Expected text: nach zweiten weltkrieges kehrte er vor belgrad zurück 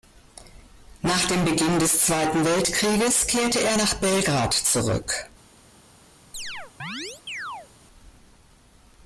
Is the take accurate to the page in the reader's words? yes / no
no